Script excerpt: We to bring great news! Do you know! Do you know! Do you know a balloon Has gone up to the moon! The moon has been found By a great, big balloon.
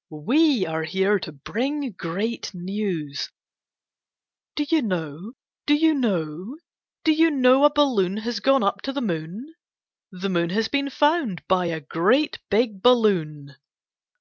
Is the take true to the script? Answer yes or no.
no